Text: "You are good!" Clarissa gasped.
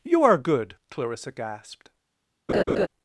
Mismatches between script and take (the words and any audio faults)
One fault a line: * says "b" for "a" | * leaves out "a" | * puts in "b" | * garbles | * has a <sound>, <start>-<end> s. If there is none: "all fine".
* has a laugh, 2.5-2.9 s